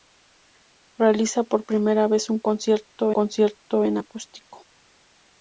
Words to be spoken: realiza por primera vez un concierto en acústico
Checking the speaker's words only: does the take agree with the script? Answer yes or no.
no